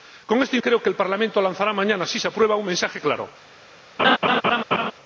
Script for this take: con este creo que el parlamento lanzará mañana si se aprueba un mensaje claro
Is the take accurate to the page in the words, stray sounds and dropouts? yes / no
no